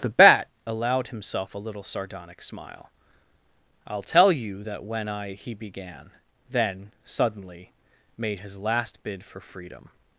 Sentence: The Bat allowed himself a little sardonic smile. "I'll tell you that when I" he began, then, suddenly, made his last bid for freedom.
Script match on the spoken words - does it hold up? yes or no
yes